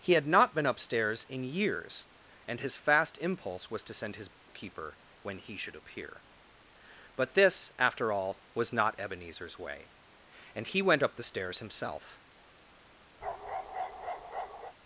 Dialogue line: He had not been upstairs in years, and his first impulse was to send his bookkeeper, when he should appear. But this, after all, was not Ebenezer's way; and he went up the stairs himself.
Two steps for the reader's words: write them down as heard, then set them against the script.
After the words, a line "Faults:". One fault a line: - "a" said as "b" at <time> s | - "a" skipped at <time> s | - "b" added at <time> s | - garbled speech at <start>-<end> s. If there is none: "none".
He had not been upstairs in years, and his fast impulse was to send his bookkeeper, when he should appear. But this, after all, was not Ebenezer's way; and he went up the stairs himself.
Faults:
- "first" said as "fast" at 2.8 s